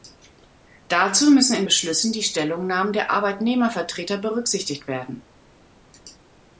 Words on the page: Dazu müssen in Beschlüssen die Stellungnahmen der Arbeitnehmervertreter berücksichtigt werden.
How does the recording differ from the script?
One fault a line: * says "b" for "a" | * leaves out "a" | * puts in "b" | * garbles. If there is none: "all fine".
all fine